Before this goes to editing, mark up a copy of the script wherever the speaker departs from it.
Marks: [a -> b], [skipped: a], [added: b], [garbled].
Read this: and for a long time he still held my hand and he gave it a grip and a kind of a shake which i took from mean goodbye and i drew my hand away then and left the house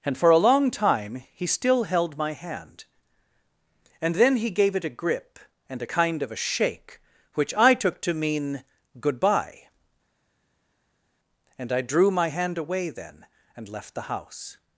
and for a long time he still held my hand and [added: then] he gave it a grip and a kind of a shake which i took [from -> to] mean goodbye and i drew my hand away then and left the house